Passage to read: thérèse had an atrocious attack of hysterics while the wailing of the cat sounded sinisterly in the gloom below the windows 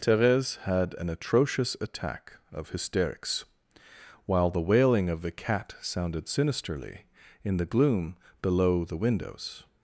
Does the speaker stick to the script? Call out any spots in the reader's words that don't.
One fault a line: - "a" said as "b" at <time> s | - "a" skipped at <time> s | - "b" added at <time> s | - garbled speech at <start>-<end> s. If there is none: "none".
none